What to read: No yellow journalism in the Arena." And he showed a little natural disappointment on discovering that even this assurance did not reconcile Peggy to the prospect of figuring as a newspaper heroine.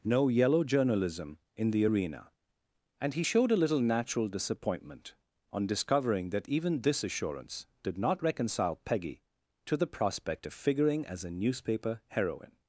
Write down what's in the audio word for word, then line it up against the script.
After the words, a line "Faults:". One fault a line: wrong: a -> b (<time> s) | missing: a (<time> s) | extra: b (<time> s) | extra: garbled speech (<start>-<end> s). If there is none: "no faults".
No yellow journalism in the Arena." And he showed a little natural disappointment on discovering that even this assurance did not reconcile Peggy to the prospect of figuring as a newspaper heroine.
Faults:
no faults